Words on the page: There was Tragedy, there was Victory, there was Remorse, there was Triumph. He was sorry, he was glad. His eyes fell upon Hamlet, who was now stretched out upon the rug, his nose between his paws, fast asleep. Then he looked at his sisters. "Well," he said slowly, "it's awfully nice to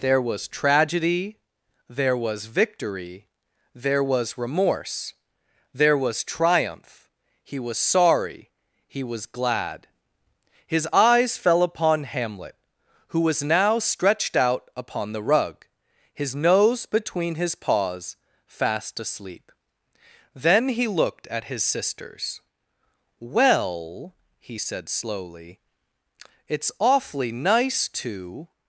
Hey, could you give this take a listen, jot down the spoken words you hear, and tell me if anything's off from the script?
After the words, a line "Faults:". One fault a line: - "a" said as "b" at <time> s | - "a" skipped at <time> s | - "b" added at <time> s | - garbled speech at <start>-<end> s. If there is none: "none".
There was Tragedy, there was Victory, there was Remorse, there was Triumph. He was sorry, he was glad. His eyes fell upon Hamlet, who was now stretched out upon the rug, his nose between his paws, fast asleep. Then he looked at his sisters. "Well," he said slowly, "it's awfully nice to
Faults:
none